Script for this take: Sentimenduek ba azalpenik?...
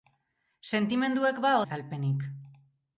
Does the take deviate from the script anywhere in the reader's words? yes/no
no